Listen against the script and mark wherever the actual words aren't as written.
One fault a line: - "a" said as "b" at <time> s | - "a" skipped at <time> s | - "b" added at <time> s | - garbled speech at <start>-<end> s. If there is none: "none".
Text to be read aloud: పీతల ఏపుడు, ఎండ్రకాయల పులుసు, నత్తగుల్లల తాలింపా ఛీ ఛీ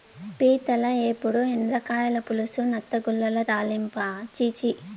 none